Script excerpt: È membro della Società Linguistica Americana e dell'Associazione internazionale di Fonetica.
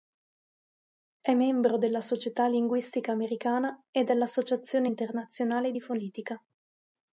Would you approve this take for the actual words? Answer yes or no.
yes